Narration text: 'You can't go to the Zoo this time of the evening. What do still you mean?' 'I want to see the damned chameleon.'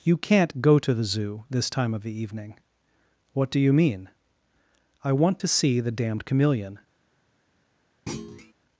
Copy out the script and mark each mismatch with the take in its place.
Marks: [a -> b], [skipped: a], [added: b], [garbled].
'You can't go to the Zoo this time of the evening. What do [skipped: still] you mean?' 'I want to see the damned chameleon.'